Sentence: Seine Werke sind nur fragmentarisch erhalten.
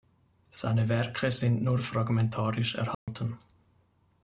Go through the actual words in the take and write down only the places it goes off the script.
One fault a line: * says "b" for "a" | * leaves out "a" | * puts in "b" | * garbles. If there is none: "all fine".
all fine